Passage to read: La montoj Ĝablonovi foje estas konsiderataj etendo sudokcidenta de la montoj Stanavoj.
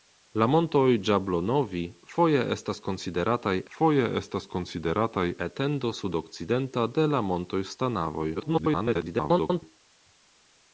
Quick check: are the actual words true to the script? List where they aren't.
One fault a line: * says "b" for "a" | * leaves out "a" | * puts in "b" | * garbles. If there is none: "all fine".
* puts in "foje estas konsiderataj"
* garbles